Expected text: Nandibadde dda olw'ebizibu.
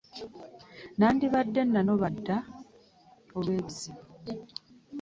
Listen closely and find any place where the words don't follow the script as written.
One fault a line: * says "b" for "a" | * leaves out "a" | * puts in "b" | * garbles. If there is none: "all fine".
* puts in "nanoba"